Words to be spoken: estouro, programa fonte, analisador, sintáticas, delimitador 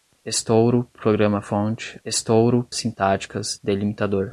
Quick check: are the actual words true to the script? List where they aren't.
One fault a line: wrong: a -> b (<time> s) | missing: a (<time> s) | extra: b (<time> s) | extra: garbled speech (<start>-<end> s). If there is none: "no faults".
wrong: analisador -> estouro (2.0 s)